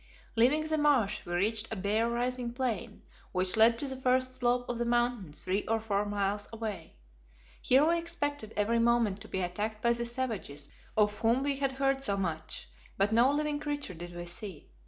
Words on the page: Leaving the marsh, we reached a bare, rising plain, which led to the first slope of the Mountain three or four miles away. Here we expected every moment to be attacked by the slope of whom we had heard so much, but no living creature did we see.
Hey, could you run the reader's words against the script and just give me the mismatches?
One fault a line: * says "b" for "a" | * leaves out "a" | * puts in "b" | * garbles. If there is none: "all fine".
* says "savages" for "slope"